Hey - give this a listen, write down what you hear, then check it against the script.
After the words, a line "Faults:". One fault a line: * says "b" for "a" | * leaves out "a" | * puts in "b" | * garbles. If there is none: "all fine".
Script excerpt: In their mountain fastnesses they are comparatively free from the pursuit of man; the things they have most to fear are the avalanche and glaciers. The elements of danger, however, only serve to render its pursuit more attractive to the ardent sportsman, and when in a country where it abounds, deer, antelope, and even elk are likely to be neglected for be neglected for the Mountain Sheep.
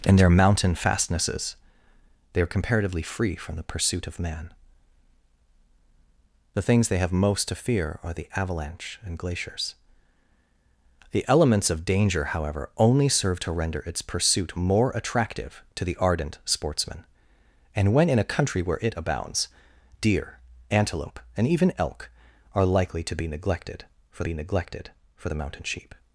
In their mountain fastnesses they are comparatively free from the pursuit of man; the things they have most to fear are the avalanche and glaciers. The elements of danger, however, only serve to render its pursuit more attractive to the ardent sportsman, and when in a country where it abounds, deer, antelope, and even elk are likely to be neglected for be neglected for the Mountain Sheep.
Faults:
all fine